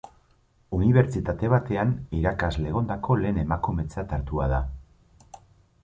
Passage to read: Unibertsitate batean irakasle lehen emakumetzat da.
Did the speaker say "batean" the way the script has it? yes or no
yes